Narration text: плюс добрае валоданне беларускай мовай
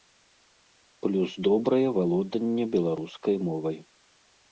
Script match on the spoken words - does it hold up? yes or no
yes